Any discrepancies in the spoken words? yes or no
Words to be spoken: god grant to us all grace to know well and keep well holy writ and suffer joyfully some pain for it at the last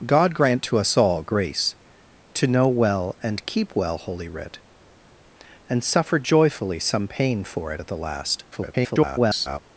yes